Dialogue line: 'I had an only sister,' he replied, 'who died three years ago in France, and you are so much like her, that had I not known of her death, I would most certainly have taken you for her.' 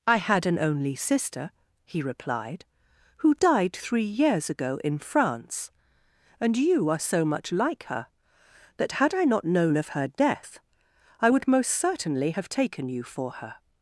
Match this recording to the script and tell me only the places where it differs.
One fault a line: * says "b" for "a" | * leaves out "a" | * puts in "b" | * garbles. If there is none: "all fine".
all fine